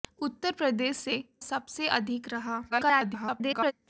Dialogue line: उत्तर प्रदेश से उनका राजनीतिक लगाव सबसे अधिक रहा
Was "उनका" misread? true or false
true